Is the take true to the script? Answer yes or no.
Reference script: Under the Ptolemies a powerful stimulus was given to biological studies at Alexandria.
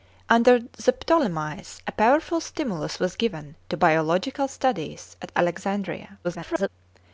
no